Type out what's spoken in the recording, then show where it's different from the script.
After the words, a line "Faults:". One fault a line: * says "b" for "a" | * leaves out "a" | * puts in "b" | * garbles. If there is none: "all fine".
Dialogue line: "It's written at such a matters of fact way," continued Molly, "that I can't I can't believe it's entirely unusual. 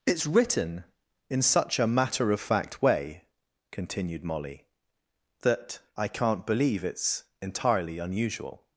"It's written in such a matter of fact way," continued Molly, "that I can't believe it's entirely unusual.
Faults:
* says "in" for "at"
* says "matter" for "matters"
* leaves out "I can't"